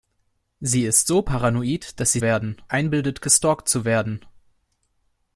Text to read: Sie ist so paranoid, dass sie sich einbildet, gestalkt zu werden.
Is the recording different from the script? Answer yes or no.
yes